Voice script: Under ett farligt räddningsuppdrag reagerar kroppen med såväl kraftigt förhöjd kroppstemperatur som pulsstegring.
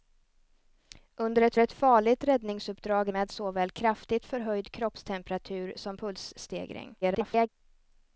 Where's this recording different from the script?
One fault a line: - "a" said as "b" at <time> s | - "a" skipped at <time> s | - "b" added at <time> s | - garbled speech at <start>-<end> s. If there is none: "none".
- "ett" added at 1.6 s
- "reagerar kroppen" skipped at 3.1 s
- garbled speech at 7.0-7.5 s